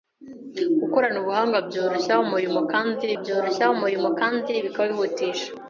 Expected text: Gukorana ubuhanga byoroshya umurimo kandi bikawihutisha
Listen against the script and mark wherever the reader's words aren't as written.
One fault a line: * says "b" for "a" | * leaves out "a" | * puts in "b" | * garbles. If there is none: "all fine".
* puts in "byoroshya umurimo kandi"